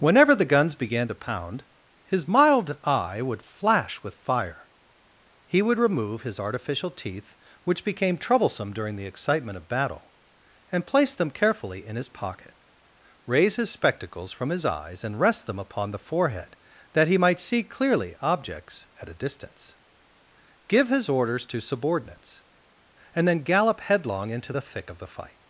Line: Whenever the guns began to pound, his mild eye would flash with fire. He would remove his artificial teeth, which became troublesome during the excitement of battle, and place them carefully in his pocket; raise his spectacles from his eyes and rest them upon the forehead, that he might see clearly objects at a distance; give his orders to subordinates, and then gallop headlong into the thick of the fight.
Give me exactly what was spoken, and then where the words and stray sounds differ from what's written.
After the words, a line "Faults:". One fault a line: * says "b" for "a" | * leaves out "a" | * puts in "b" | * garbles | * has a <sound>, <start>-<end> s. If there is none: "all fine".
Whenever the guns began to pound, his mild eye would flash with fire. He would remove his artificial teeth, which became troublesome during the excitement of battle, and place them carefully in his pocket; raise his spectacles from his eyes and rest them upon the forehead, that he might see clearly objects at a distance; give his orders to subordinates, and then gallop headlong into the thick of the fight.
Faults:
all fine